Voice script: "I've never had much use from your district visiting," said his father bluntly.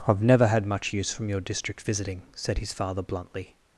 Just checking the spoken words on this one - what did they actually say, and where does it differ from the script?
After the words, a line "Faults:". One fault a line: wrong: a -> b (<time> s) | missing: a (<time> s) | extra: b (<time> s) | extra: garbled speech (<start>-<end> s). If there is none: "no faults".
"I've never had much use from your district visiting," said his father bluntly.
Faults:
no faults